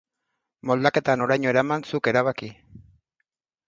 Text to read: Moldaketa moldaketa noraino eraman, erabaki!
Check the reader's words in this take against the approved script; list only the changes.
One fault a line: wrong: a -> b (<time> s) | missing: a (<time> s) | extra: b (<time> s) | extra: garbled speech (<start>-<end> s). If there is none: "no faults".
missing: moldaketa (1.2 s)
extra: zuk (1.9 s)